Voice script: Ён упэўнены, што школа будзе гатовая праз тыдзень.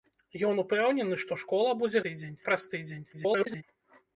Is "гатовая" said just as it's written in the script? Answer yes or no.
no